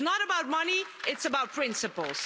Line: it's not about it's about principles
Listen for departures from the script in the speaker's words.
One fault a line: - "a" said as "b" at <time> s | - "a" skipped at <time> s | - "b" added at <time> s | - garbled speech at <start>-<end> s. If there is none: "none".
- "money" added at 0.5 s